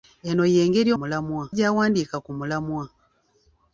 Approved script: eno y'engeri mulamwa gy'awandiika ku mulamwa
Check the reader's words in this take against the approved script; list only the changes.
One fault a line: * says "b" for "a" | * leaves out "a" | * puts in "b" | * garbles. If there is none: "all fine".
all fine